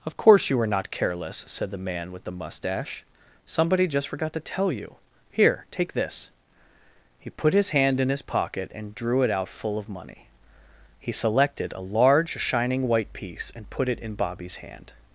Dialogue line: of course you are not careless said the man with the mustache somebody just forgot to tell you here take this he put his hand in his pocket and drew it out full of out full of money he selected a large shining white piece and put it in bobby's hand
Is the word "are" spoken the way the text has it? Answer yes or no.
no